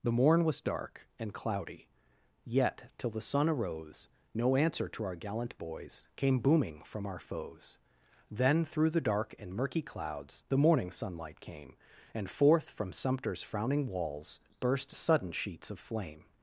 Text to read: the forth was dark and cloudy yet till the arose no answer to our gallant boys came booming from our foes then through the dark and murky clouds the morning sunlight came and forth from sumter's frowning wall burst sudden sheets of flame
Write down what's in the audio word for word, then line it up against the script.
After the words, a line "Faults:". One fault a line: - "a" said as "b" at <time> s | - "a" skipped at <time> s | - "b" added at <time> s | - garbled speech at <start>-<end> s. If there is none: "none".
the morn was dark and cloudy yet till the sun arose no answer to our gallant boys came booming from our foes then through the dark and murky clouds the morning sunlight came and forth from sumter's frowning walls burst sudden sheets of flame
Faults:
- "forth" said as "morn" at 0.1 s
- "sun" added at 3.2 s
- "wall" said as "walls" at 13.9 s